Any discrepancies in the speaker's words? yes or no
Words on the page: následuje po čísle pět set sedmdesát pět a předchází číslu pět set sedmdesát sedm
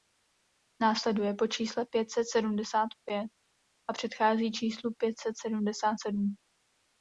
no